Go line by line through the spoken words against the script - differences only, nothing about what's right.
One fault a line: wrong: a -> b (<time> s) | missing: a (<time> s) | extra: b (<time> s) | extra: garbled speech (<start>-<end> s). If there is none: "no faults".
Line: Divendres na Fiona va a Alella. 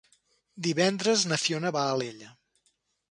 no faults